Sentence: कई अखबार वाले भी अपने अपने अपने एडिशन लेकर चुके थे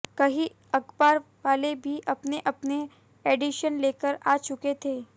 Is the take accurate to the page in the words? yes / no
no